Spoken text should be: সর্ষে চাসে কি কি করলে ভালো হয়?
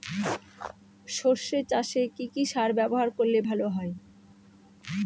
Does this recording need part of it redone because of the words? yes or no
yes